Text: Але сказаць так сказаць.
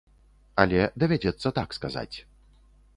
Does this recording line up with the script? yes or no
no